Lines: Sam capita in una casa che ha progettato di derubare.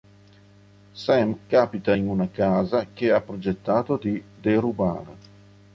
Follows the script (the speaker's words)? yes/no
yes